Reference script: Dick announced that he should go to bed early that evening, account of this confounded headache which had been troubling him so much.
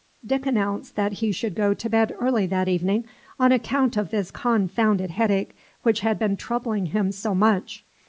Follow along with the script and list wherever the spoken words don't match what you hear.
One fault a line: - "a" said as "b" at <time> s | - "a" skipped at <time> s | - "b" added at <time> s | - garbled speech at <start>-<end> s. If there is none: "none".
- "on" added at 3.4 s